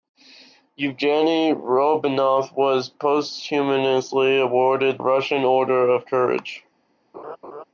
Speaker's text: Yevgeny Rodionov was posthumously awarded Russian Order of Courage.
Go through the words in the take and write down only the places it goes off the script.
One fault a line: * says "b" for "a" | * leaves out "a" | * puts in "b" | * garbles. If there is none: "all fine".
all fine